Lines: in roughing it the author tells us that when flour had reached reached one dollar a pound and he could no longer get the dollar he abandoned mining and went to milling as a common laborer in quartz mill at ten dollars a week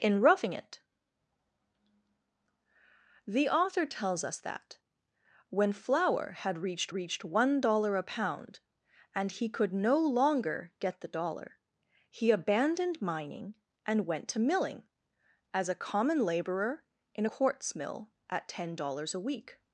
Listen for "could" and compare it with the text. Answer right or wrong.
right